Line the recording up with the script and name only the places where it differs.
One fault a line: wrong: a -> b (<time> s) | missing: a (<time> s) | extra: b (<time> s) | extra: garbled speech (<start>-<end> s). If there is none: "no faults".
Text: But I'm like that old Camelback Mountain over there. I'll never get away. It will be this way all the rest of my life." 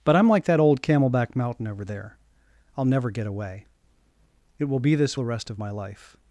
missing: way all (5.2 s)